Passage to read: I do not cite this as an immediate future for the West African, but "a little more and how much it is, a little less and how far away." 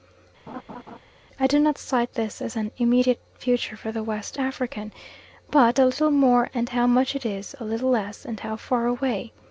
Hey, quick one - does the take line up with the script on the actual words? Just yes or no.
yes